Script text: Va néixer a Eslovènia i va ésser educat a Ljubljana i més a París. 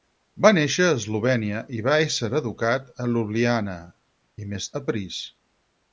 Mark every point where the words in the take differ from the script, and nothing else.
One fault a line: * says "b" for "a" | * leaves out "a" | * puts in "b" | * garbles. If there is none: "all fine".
all fine